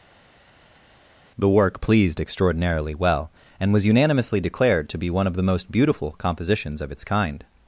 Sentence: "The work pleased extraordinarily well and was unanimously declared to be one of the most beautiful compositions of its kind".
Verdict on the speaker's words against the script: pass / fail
pass